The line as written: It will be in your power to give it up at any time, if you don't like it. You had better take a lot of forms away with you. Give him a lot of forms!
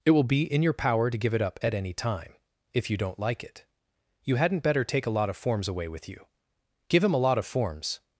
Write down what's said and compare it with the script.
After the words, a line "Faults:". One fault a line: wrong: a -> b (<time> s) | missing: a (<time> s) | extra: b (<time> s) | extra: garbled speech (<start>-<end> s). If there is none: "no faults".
It will be in your power to give it up at any time, if you don't like it. You hadn't better take a lot of forms away with you. Give him a lot of forms!
Faults:
wrong: had -> hadn't (4.4 s)